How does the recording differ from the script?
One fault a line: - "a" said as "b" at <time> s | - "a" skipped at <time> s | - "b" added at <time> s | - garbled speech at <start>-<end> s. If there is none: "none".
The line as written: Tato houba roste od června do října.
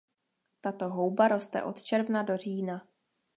none